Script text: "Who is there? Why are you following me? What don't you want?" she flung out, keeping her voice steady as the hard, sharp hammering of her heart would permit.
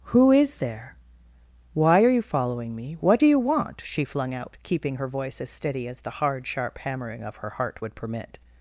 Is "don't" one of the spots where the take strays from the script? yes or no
yes